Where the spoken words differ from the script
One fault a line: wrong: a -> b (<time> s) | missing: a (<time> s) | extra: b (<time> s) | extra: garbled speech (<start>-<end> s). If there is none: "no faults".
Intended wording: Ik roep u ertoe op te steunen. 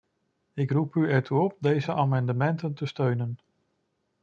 extra: deze amendementen (1.6 s)